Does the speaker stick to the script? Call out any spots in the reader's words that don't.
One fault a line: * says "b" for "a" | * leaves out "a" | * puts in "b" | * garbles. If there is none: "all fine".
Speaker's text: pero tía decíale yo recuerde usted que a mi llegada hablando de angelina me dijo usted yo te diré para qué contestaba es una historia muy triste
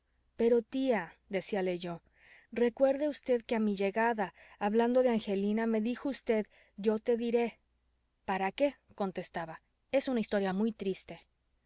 all fine